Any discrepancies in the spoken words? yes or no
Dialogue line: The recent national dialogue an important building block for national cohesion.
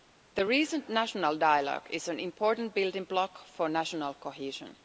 yes